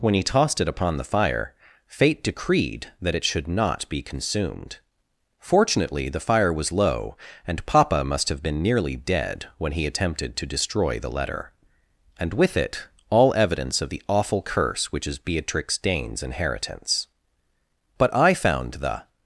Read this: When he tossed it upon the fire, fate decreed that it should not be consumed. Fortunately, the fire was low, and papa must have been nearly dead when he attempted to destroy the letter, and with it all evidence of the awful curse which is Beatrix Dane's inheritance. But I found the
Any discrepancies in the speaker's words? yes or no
no